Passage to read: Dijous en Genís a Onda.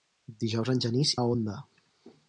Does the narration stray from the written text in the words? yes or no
no